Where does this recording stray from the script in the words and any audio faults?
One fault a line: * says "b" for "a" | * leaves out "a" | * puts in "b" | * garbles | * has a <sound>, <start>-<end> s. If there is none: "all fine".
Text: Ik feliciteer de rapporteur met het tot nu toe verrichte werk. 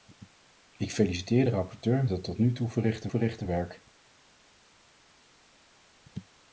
* leaves out "met"
* puts in "verrichte"